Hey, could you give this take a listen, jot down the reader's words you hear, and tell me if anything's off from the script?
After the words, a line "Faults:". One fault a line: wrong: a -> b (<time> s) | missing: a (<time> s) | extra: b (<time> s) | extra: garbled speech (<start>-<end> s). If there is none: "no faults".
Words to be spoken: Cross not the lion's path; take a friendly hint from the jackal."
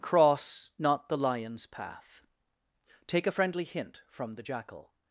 Cross not the lion's path; take a friendly hint from the jackal."
Faults:
no faults